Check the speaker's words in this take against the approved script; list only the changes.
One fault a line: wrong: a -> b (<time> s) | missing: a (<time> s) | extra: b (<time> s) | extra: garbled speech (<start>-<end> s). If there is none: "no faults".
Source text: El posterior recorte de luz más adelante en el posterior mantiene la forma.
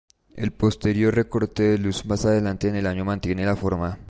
wrong: posterior -> año (2.9 s)